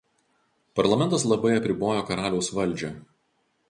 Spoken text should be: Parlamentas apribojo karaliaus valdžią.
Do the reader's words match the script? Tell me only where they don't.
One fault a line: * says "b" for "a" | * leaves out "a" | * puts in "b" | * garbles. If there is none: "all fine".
* puts in "labai"